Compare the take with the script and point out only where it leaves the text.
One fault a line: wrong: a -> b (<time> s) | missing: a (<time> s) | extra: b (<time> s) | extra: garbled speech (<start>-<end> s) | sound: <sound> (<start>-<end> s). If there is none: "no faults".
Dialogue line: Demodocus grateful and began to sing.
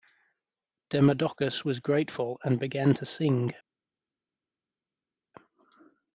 extra: was (1.6 s)